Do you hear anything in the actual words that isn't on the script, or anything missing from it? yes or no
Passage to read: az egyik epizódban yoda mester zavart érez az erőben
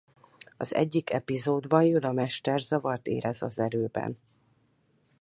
no